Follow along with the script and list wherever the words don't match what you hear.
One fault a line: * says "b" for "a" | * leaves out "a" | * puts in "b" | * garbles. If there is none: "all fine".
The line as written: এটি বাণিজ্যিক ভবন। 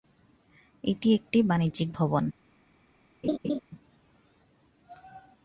* puts in "একটি"